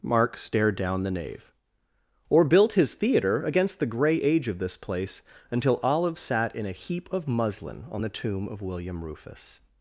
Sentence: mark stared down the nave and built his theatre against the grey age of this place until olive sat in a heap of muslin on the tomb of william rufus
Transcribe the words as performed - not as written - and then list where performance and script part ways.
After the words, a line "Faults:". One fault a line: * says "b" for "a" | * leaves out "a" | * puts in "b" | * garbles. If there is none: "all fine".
mark stared down the nave or built his theatre against the grey age of this place until olive sat in a heap of muslin on the tomb of william rufus
Faults:
* says "or" for "and"